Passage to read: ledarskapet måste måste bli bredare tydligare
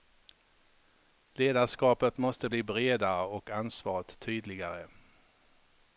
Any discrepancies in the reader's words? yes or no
yes